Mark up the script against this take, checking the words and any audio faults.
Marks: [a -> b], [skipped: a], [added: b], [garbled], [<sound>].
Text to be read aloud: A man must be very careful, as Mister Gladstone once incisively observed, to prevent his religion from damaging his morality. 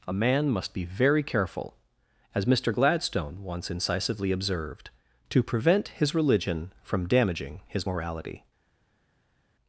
A man must be very careful, as Mister Gladstone once incisively observed, to prevent his religion from damaging his morality.